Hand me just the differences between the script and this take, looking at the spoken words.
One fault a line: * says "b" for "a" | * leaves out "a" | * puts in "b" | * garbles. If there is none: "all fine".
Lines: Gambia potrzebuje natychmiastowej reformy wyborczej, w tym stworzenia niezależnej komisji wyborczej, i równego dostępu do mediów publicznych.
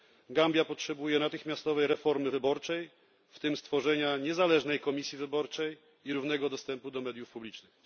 all fine